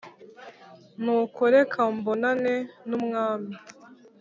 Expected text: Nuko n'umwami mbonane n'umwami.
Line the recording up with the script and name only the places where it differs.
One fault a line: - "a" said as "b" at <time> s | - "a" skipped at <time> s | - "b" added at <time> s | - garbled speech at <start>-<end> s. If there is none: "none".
- "n'umwami" said as "reka" at 1.6 s